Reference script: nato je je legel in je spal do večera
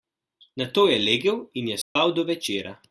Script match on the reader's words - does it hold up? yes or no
no